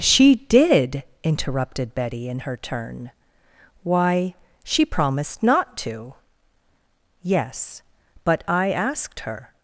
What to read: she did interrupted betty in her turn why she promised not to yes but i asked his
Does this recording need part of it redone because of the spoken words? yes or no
yes